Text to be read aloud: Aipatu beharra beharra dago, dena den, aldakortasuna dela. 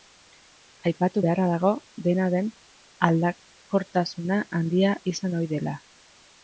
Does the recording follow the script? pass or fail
fail